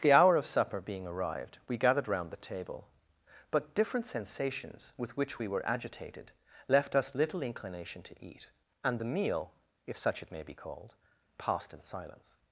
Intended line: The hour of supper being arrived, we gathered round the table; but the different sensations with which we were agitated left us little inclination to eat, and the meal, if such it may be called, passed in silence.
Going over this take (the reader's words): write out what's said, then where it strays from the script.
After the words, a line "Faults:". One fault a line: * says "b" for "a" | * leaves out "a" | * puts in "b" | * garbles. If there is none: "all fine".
The hour of supper being arrived, we gathered round the table; but different sensations with which we were agitated left us little inclination to eat, and the meal, if such it may be called, passed in silence.
Faults:
* leaves out "the"